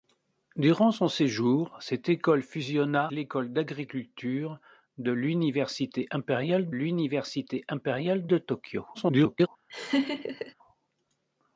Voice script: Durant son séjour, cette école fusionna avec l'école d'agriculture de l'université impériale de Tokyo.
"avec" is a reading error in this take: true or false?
true